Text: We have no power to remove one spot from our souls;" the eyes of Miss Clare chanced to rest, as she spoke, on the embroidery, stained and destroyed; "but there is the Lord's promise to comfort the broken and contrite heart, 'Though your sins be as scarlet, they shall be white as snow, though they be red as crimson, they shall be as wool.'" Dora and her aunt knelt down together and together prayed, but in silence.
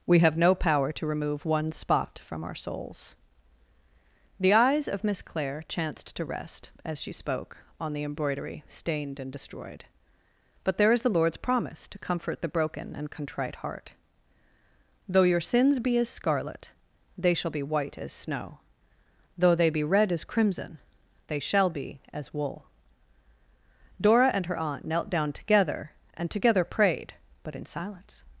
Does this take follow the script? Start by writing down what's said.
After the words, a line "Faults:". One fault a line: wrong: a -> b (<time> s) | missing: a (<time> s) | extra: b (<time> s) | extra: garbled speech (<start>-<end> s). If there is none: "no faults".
We have no power to remove one spot from our souls;" the eyes of Miss Clare chanced to rest, as she spoke, on the embroidery, stained and destroyed; "but there is the Lord's promise to comfort the broken and contrite heart, 'Though your sins be as scarlet, they shall be white as snow, though they be red as crimson, they shall be as wool.'" Dora and her aunt knelt down together and together prayed, but in silence.
Faults:
no faults